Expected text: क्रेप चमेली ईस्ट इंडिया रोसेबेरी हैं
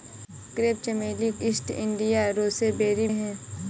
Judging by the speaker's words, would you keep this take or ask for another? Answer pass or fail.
pass